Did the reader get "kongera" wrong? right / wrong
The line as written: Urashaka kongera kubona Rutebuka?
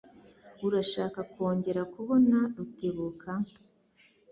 right